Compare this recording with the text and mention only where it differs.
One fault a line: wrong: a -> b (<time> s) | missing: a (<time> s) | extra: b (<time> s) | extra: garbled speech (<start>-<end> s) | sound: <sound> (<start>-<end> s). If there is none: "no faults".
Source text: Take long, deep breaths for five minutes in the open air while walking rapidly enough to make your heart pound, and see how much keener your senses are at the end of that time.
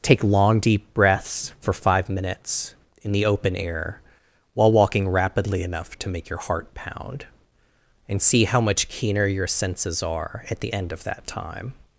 no faults